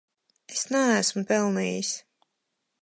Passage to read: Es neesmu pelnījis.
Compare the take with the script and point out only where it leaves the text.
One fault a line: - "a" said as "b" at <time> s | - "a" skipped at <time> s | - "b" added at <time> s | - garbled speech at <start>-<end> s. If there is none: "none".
none